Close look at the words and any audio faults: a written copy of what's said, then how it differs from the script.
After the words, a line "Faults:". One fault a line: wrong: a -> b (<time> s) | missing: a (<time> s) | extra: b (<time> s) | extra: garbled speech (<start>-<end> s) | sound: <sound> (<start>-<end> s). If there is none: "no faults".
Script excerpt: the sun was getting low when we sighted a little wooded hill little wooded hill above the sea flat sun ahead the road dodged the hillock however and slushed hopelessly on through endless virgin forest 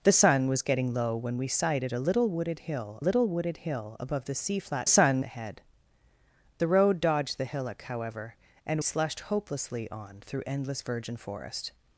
the sun was getting low when we sighted a little wooded hill little wooded hill above the sea flat sun ahead the road dodged the hillock however and slushed hopelessly on through endless virgin forest
Faults:
no faults